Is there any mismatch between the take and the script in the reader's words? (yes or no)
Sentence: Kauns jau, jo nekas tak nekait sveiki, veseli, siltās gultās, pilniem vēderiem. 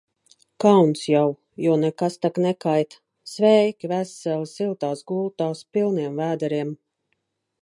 no